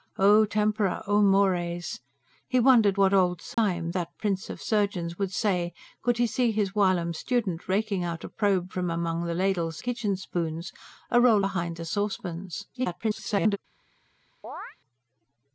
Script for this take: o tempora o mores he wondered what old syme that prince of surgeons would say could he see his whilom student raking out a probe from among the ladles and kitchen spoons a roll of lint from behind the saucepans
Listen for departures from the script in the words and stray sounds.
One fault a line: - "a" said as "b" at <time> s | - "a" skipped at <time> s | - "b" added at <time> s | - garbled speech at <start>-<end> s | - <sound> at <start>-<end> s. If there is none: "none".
- dropout at 3.5-3.6 s
- "and" skipped at 9.8 s
- "of lint from" skipped at 11.4 s
- garbled speech at 12.7-13.6 s
- chirp at 14.4-14.8 s